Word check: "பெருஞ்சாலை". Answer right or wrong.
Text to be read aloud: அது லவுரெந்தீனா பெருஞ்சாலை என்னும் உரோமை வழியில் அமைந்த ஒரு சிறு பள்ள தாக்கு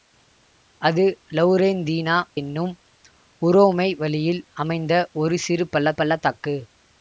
wrong